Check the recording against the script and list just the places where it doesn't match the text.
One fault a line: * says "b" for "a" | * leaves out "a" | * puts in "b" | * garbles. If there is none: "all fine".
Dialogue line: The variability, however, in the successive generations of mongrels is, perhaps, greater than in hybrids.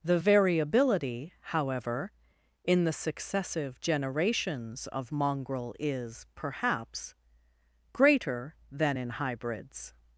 * says "mongrel" for "mongrels"